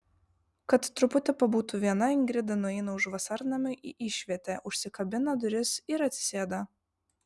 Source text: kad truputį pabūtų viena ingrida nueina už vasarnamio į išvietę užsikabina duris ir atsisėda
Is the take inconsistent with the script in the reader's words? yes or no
no